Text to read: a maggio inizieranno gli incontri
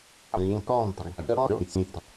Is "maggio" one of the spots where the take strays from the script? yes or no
yes